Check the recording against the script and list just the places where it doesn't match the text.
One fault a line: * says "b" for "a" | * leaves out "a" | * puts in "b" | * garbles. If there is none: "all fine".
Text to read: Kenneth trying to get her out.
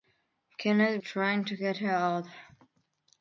all fine